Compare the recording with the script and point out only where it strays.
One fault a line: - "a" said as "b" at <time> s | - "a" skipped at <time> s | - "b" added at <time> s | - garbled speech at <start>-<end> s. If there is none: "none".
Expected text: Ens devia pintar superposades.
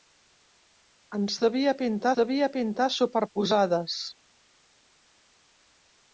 - "devia pintar" added at 2.2 s